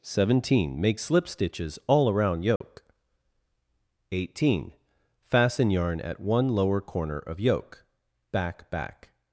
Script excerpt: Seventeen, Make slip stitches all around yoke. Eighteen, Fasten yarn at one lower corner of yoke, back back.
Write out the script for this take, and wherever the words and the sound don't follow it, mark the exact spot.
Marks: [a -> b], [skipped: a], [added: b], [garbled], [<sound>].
Seventeen, Make slip stitches all around yoke. [dropout] Eighteen, Fasten yarn at one lower corner of yoke, back back.